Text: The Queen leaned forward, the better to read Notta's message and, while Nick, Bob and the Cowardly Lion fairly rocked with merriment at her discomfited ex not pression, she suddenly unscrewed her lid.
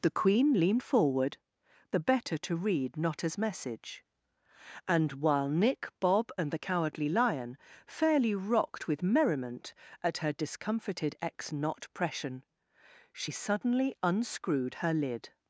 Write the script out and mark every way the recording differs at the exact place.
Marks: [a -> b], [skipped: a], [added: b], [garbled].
The Queen leaned forward, the better to read Notta's message and, while Nick, Bob and the Cowardly Lion fairly rocked with merriment at her discomfited ex not pression, she suddenly unscrewed her lid.